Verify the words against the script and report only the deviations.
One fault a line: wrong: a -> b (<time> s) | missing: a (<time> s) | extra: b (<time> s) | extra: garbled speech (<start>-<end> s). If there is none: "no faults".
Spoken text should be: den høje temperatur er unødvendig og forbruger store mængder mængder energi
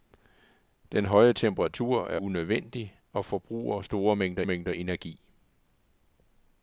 no faults